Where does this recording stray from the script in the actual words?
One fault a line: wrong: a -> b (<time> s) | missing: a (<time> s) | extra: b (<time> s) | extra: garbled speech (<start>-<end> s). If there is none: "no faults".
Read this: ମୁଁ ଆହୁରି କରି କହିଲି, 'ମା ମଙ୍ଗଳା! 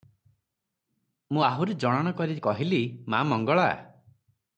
extra: ଜଣାଣ (1.8 s)